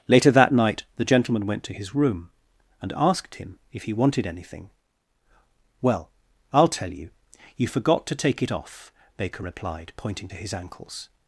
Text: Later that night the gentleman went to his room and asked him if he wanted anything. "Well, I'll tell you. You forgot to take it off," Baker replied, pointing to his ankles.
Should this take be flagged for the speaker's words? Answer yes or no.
no